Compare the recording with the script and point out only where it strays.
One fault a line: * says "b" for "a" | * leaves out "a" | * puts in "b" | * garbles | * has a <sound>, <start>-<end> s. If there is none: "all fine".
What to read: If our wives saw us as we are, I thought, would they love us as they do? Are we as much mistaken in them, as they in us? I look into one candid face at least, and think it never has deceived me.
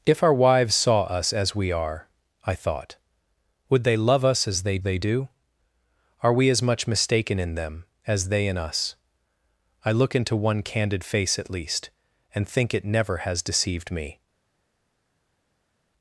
* puts in "they"